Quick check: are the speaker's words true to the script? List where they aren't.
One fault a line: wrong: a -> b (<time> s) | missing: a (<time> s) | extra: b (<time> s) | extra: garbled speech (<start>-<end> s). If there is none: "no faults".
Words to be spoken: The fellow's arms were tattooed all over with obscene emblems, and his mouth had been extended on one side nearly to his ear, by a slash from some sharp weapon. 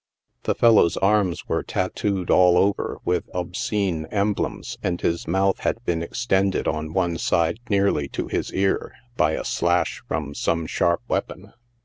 no faults